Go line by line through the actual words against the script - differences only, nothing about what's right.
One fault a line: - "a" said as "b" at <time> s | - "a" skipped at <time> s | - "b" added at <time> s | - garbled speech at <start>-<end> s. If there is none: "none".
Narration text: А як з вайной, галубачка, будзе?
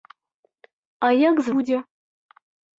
- "вайной галубачка" skipped at 1.5 s